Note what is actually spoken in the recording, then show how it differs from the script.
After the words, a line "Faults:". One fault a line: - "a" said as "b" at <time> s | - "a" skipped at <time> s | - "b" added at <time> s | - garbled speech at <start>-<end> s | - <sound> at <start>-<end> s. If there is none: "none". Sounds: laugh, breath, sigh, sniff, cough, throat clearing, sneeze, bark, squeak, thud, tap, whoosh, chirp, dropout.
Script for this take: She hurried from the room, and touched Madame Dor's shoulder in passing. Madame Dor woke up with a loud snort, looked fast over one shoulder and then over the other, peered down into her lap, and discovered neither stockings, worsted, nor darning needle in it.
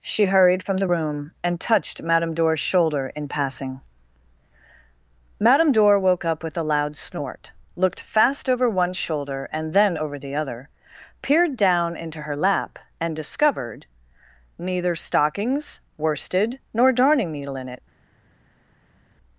She hurried from the room, and touched Madame Dor's shoulder in passing. Madame Dor woke up with a loud snort, looked fast over one shoulder and then over the other, peered down into her lap, and discovered neither stockings, worsted, nor darning needle in it.
Faults:
none